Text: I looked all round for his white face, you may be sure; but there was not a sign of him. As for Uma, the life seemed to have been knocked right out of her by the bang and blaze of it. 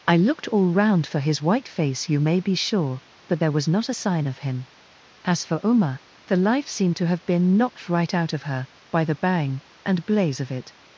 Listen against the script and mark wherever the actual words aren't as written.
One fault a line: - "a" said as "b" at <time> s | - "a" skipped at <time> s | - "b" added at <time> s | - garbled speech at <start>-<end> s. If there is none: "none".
none